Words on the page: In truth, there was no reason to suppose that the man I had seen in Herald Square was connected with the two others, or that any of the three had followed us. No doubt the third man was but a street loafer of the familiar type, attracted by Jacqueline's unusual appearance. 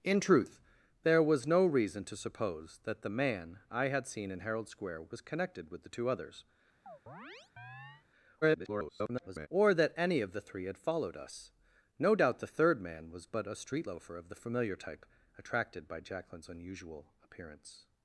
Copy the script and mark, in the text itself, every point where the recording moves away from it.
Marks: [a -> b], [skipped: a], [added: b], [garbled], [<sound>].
In truth, there was no reason to suppose that the man I had seen in Herald Square was connected with the two others, [chirp] [garbled] or that any of the three had followed us. No doubt the third man was but a street loafer of the familiar type, attracted by Jacqueline's unusual appearance.